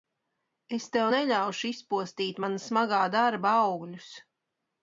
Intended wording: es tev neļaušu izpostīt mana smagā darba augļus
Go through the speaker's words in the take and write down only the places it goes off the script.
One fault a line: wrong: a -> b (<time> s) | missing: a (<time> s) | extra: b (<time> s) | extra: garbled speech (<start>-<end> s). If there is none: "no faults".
no faults